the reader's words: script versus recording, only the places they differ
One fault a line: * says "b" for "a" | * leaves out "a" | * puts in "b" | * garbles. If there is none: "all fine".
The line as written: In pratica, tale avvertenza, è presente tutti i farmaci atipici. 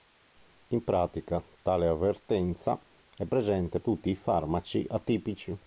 all fine